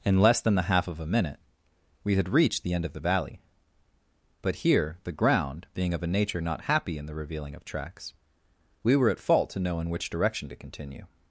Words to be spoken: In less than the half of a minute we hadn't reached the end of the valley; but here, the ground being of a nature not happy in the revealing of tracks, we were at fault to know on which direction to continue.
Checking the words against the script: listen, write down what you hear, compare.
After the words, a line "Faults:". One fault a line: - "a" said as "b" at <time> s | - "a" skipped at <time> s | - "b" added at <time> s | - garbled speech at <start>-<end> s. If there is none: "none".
In less than the half of a minute we had reached the end of the valley; but here, the ground being of a nature not happy in the revealing of tracks, we were at fault to know in which direction to continue.
Faults:
- "hadn't" said as "had" at 2.1 s
- "on" said as "in" at 9.8 s